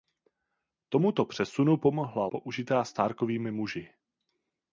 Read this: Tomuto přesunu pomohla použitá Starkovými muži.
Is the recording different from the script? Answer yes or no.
no